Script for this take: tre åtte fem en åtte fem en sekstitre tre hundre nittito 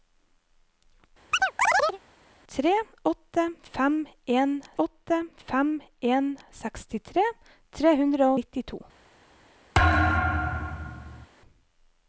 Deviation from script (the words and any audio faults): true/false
true